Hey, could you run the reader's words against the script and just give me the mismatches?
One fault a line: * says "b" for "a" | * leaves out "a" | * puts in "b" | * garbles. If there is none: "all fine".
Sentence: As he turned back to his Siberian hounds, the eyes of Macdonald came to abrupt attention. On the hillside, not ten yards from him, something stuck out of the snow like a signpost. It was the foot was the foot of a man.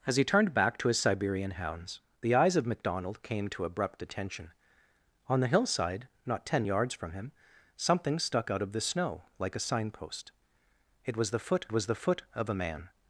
all fine